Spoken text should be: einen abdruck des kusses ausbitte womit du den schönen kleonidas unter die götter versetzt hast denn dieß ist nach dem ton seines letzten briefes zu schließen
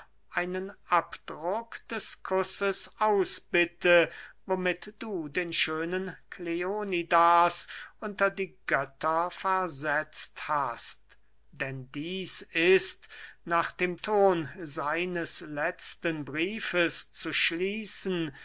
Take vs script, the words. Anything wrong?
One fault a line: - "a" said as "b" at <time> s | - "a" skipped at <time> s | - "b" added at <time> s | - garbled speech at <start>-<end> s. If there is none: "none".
none